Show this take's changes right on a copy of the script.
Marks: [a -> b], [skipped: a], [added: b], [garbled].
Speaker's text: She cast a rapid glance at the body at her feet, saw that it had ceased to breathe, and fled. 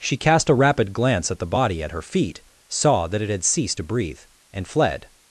She cast a rapid glance at the body at her feet, saw that it had ceased to breathe, and fled.